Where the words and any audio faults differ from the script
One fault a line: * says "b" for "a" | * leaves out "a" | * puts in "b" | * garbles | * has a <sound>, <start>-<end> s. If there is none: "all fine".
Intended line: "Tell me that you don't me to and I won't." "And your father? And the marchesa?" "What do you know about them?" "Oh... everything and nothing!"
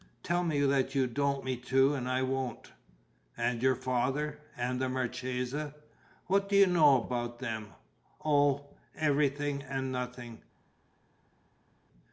all fine